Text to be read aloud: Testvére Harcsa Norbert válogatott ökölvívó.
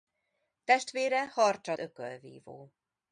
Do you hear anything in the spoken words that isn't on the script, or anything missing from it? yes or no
yes